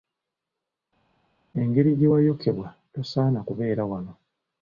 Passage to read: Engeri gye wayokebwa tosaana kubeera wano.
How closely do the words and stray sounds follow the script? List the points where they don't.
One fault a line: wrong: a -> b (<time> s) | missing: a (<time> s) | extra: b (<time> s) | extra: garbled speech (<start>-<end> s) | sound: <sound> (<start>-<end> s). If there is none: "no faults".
no faults